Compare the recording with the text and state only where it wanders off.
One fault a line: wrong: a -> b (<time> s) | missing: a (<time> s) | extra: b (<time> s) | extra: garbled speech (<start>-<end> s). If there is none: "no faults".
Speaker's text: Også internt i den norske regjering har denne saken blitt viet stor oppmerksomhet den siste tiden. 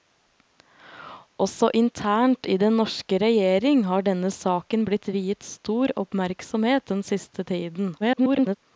extra: garbled speech (8.0-8.6 s)